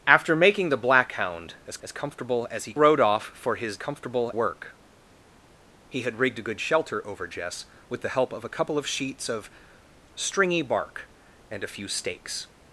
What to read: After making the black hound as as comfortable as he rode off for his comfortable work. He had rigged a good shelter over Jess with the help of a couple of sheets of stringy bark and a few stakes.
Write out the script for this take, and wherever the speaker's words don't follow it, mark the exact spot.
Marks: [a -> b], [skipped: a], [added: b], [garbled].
After making the black hound as as comfortable as he rode off for his comfortable work. He had rigged a good shelter over Jess with the help of a couple of sheets of stringy bark and a few stakes.